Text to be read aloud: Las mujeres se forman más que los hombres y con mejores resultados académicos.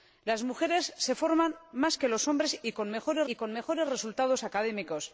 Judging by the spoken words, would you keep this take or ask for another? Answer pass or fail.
fail